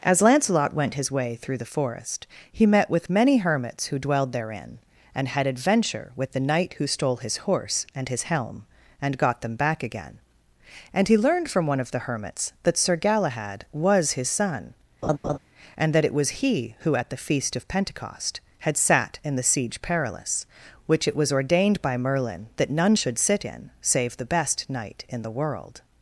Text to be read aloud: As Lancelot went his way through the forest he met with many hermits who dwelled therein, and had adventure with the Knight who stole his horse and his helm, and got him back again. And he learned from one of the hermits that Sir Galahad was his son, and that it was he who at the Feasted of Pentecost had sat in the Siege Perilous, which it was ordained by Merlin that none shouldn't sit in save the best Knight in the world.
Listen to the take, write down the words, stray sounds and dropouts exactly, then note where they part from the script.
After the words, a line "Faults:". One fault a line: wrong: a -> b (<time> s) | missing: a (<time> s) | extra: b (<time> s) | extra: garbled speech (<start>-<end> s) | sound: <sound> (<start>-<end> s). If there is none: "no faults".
As Lancelot went his way through the forest he met with many hermits who dwelled therein, and had adventure with the Knight who stole his horse and his helm, and got them back again. And he learned from one of the hermits that Sir Galahad was his son, and that it was he who at the Feast of Pentecost had sat in the Siege Perilous, which it was ordained by Merlin that none should sit in save the best Knight in the world.
Faults:
wrong: him -> them (9.4 s)
sound: laugh (15.0-15.4 s)
wrong: Feasted -> Feast (17.2 s)
wrong: shouldn't -> should (22.9 s)